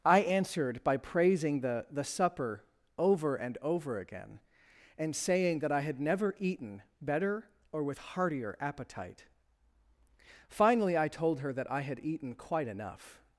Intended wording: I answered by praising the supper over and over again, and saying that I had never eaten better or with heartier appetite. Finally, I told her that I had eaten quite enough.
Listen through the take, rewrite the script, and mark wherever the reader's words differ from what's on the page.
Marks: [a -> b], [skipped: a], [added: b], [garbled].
I answered by praising the [added: the] supper over and over again, and saying that I had never eaten better or with heartier appetite. Finally, I told her that I had eaten quite enough.